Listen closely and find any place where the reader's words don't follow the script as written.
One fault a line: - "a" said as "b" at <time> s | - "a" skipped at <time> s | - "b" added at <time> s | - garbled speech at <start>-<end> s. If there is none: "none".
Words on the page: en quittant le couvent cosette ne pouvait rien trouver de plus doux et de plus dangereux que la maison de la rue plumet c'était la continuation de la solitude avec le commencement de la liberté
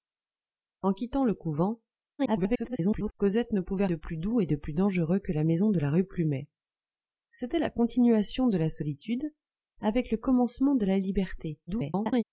- garbled speech at 2.2-3.1 s
- "rien trouver" skipped at 3.9 s
- garbled speech at 11.7-12.2 s